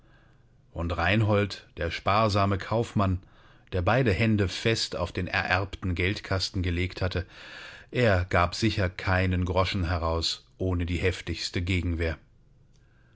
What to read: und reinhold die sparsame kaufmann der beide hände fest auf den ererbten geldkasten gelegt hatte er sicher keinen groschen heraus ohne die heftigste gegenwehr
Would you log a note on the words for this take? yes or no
yes